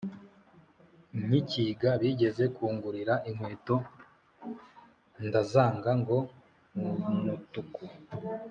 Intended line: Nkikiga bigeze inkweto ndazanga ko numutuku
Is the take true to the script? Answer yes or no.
no